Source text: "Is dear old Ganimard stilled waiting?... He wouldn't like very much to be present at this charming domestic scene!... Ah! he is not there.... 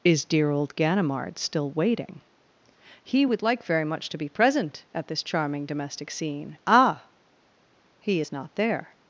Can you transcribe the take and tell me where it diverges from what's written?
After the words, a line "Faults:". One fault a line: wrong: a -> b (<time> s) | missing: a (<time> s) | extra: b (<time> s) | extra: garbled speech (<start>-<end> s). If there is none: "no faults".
"Is dear old Ganimard still waiting?... He would like very much to be present at this charming domestic scene!... Ah! he is not there....
Faults:
wrong: stilled -> still (1.4 s)
wrong: wouldn't -> would (3.2 s)